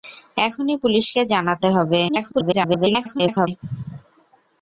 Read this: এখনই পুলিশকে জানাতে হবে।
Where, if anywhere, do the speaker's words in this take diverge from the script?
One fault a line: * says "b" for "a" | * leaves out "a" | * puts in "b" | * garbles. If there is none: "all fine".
* garbles